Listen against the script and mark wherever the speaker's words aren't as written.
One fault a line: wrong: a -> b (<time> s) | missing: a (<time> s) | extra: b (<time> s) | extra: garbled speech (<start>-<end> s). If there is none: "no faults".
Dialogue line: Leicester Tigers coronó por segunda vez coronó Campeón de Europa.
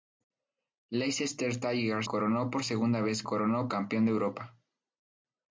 no faults